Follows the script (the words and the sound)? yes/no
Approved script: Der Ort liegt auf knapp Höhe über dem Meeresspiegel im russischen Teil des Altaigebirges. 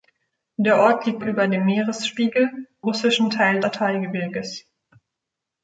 no